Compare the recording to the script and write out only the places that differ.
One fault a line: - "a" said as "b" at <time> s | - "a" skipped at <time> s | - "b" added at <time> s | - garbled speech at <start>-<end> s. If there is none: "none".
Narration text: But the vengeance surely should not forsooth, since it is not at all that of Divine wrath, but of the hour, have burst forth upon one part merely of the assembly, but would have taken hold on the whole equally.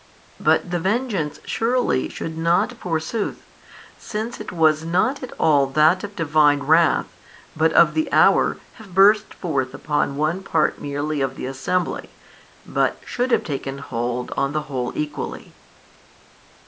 - "is" said as "was" at 4.5 s
- "would" said as "should" at 13.1 s